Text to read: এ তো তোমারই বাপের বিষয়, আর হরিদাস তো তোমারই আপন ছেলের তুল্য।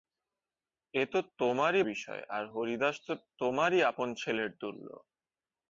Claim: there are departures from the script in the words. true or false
true